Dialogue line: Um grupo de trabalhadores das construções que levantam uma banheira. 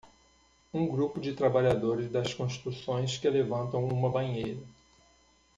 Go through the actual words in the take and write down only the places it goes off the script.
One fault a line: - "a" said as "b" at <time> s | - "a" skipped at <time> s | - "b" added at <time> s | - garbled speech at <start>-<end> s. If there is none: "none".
none